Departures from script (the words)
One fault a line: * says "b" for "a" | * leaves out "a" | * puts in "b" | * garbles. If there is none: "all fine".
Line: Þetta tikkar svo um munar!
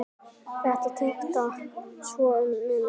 all fine